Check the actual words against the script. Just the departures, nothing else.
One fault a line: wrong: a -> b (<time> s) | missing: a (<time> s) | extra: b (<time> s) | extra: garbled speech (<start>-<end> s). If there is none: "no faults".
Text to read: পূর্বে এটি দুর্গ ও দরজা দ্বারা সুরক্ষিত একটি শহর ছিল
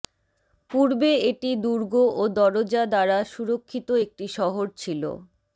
no faults